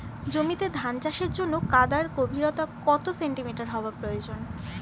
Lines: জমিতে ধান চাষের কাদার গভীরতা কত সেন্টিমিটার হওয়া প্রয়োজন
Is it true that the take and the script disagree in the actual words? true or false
true